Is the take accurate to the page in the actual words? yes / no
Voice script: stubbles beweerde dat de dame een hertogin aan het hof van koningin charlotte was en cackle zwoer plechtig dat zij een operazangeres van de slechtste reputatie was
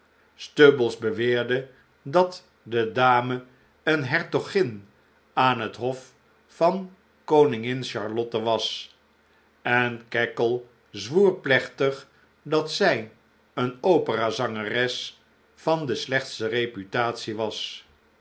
yes